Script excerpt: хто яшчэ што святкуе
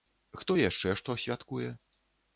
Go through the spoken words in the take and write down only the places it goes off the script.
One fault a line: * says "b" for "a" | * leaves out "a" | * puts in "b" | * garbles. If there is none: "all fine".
all fine